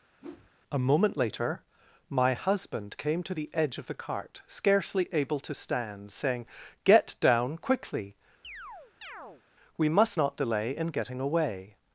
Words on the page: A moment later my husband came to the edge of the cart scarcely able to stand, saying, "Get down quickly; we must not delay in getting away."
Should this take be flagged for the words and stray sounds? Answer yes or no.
yes